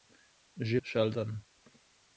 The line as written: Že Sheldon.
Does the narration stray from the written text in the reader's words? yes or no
no